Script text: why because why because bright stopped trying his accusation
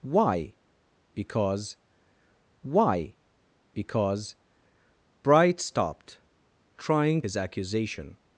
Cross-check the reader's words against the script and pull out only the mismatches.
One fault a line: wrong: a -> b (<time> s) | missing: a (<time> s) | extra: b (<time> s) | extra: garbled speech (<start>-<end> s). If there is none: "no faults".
no faults